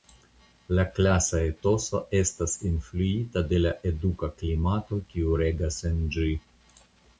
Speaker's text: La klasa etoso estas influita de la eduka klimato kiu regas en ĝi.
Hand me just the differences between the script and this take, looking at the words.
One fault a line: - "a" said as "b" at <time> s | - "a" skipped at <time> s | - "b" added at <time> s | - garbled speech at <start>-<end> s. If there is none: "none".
none